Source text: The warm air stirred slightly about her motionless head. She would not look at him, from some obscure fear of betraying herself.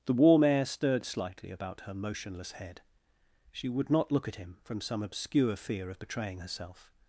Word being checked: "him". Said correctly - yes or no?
yes